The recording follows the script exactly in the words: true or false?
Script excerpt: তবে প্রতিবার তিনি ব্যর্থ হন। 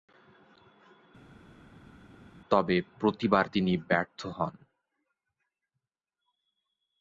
true